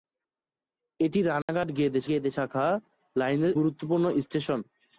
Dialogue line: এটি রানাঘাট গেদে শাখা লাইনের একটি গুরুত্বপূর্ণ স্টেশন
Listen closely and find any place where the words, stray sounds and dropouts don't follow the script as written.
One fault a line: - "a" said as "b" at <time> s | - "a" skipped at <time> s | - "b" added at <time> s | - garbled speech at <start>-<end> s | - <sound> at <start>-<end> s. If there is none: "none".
- dropout at 1.4-1.5 s
- "গেদে" added at 2.1 s
- "একটি" skipped at 3.5 s